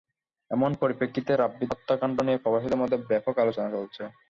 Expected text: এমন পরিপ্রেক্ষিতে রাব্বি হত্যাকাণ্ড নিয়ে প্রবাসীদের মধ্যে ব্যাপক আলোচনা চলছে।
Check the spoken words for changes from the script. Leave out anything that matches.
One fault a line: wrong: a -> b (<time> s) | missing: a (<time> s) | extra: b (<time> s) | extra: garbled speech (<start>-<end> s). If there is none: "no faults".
no faults